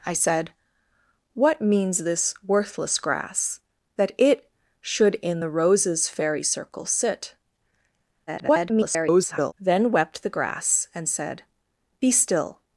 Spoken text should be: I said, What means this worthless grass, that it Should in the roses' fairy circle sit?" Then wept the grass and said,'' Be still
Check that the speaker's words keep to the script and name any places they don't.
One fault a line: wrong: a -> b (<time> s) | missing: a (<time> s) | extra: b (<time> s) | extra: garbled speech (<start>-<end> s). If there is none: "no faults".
extra: garbled speech (8.3-9.5 s)